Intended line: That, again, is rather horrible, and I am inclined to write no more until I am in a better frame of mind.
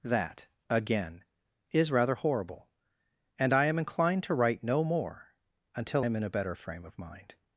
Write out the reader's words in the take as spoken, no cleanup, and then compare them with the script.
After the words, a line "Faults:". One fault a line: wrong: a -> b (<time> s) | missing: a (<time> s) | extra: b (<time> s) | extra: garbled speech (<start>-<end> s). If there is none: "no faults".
That, again, is rather horrible, and I am inclined to write no more until am in a better frame of mind.
Faults:
missing: I (6.0 s)